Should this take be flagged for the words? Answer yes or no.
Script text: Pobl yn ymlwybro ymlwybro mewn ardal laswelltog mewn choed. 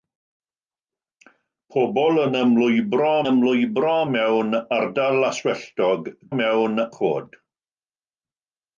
no